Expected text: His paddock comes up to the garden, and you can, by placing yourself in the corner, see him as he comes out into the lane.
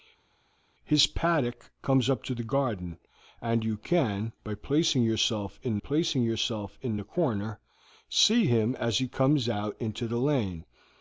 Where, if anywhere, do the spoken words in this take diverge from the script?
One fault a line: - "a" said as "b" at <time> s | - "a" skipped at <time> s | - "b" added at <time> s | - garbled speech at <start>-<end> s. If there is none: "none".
- "placing yourself in" added at 5.8 s